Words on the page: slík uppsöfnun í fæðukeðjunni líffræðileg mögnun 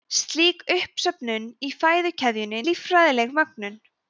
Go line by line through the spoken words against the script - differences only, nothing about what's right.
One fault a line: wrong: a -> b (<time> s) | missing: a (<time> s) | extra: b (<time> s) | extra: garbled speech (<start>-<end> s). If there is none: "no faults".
no faults